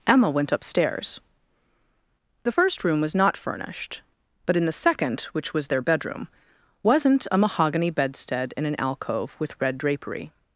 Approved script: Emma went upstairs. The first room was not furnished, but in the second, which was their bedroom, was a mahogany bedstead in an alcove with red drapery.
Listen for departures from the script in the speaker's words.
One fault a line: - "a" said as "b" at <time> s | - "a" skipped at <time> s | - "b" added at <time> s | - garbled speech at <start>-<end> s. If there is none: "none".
- "was" said as "wasn't" at 6.8 s